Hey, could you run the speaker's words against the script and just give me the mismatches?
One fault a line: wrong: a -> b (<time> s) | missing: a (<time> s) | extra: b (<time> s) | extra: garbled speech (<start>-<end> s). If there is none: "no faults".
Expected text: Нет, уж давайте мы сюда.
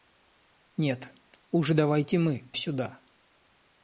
no faults